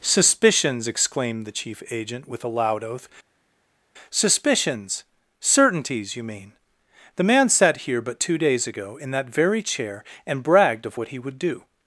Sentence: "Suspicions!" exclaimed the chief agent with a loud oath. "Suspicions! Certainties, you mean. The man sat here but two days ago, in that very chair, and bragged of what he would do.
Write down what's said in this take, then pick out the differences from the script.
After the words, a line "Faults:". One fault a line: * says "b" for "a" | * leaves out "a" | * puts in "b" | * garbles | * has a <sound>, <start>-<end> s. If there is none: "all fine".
"Suspicions!" exclaimed the chief agent with a loud oath. "Suspicions! Certainties, you mean. The man sat here but two days ago, in that very chair, and bragged of what he would do.
Faults:
all fine